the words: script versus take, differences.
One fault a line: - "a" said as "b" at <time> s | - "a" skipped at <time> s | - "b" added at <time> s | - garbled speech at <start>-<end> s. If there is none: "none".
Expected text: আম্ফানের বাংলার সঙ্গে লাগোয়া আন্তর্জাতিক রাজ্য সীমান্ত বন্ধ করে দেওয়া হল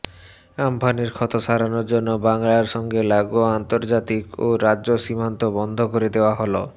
- "ক্ষত সারানোর জন্য" added at 1.1 s
- "ও" added at 4.4 s